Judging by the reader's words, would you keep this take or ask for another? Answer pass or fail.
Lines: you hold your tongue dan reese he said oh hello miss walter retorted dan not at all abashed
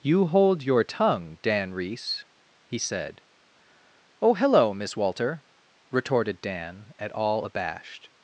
fail